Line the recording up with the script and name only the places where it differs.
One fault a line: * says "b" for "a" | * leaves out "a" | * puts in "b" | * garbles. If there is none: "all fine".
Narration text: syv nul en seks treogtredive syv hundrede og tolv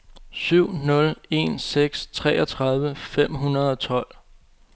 * says "fem" for "syv"